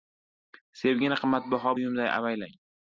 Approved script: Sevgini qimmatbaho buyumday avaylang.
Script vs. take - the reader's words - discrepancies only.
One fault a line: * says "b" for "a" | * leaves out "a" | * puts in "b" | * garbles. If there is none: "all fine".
all fine